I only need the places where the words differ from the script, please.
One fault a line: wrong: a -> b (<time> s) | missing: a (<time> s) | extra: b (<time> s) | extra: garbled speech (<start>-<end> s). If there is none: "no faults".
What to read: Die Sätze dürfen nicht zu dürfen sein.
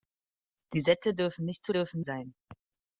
no faults